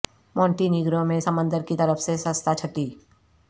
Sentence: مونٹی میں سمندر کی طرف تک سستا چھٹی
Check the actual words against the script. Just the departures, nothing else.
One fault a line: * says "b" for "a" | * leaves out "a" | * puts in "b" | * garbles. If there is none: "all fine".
* puts in "نیگرو"
* says "سے" for "تک"